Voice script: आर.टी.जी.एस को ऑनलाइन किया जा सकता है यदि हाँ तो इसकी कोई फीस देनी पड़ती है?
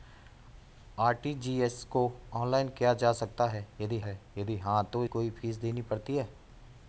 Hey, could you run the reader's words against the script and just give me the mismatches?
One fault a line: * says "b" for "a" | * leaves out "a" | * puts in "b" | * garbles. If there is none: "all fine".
* puts in "है यदि"
* leaves out "इसकी"